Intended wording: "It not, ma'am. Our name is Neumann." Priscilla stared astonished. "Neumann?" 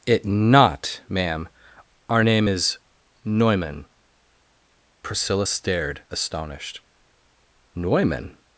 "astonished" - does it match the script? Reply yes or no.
yes